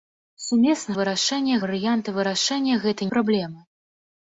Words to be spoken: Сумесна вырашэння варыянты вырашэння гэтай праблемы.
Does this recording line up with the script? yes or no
yes